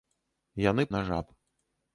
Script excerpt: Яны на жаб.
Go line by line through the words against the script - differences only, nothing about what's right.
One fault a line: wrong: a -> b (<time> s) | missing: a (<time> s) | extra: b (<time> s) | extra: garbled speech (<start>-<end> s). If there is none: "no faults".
no faults